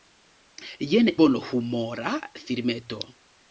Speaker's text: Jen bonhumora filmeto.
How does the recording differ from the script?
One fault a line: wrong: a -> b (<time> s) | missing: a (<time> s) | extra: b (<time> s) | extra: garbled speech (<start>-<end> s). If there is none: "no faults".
no faults